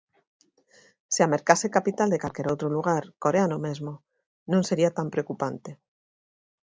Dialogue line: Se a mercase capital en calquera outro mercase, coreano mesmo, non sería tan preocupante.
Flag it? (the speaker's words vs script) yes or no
yes